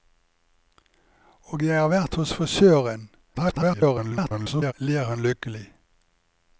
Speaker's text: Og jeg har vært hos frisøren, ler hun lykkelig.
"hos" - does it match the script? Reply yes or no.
yes